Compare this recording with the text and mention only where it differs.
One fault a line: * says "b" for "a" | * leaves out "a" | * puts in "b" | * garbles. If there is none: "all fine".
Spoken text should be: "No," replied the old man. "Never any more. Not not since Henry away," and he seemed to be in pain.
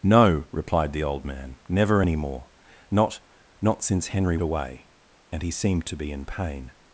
all fine